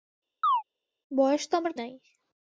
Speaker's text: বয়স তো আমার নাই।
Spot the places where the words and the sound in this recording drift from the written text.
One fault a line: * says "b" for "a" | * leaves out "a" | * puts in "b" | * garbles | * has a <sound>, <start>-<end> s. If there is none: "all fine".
* has a chirp, 0.4-0.6 s